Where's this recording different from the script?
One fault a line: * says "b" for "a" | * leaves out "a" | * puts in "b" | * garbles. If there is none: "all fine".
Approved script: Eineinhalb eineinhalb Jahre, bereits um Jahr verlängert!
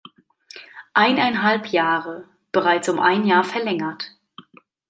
* leaves out "eineinhalb"
* puts in "ein"